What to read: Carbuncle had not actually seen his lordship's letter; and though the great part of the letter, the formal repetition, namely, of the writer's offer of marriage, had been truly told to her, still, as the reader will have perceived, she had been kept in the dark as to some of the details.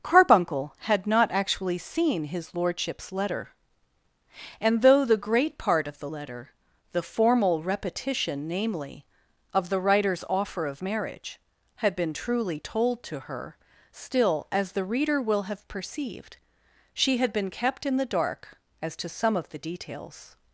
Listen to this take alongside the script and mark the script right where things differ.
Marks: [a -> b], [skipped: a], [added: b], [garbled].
Carbuncle had not actually seen his lordship's letter; and though the great part of the letter, the formal repetition, namely, of the writer's offer of marriage, had been truly told to her, still, as the reader will have perceived, she had been kept in the dark as to some of the details.